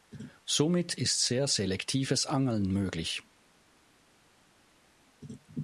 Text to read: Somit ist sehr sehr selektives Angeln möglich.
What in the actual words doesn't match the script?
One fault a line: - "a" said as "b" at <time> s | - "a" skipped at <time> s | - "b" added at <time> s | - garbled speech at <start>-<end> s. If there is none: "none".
- "sehr" skipped at 1.5 s